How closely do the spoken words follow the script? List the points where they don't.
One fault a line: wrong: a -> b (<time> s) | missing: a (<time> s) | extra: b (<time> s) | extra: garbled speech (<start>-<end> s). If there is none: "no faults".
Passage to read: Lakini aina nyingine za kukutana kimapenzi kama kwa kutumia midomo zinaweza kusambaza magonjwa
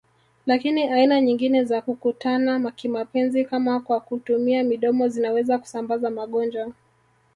no faults